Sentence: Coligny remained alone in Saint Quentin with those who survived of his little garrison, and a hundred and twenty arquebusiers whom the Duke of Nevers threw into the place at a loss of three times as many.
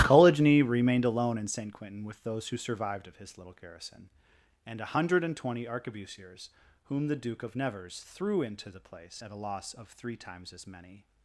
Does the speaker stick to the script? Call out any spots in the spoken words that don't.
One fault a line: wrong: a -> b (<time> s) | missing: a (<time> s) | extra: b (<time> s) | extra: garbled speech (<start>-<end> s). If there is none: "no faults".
no faults